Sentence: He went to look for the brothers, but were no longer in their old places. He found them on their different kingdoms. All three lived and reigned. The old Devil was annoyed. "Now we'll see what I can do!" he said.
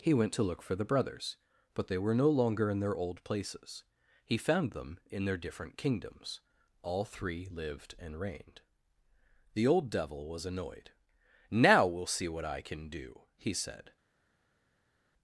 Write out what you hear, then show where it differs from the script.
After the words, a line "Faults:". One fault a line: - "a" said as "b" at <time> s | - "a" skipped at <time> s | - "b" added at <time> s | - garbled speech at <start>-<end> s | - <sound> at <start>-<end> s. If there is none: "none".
He went to look for the brothers, but they were no longer in their old places. He found them in their different kingdoms. All three lived and reigned. The old Devil was annoyed. "Now we'll see what I can do!" he said.
Faults:
- "they" added at 1.9 s
- "on" said as "in" at 5.1 s